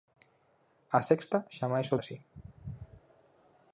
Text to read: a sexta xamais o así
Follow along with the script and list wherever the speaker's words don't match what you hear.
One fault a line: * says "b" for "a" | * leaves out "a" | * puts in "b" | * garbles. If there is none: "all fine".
all fine